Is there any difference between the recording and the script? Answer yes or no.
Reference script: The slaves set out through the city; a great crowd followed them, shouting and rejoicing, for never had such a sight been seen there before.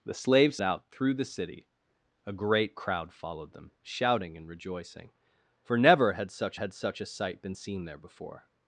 yes